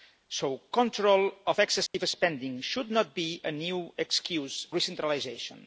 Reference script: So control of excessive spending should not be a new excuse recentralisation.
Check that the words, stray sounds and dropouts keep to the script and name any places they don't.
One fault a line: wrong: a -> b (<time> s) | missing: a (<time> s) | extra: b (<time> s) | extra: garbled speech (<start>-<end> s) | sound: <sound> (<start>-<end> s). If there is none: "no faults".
sound: dropout (1.9-1.9 s)